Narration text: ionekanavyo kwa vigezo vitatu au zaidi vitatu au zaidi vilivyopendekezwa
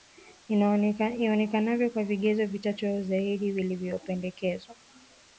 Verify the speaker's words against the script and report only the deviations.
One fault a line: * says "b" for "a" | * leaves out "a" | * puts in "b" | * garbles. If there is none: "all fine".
* leaves out "vitatu au zaidi"